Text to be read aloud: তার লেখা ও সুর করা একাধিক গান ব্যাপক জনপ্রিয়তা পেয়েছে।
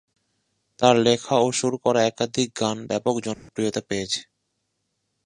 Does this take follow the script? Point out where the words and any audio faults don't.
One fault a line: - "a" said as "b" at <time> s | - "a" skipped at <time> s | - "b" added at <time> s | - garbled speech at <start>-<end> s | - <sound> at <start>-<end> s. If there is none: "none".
- dropout at 3.3-3.5 s